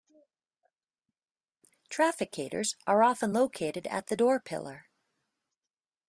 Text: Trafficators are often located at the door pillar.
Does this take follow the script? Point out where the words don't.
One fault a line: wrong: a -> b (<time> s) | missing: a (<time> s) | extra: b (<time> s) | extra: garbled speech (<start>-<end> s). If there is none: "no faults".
no faults